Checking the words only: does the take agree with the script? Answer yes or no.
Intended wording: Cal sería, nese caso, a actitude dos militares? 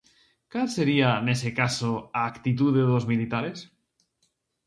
yes